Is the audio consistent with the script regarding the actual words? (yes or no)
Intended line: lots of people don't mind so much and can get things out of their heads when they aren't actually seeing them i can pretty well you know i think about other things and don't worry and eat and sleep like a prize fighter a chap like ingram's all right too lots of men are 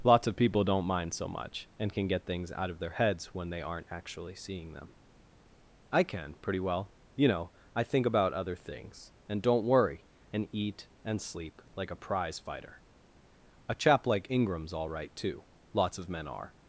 yes